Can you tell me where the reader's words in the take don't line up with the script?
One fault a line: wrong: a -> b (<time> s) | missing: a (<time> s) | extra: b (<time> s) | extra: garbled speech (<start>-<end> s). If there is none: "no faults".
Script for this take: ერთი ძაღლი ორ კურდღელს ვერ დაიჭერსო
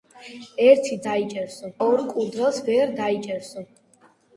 wrong: ძაღლი -> დაიჭერსო (1.1 s)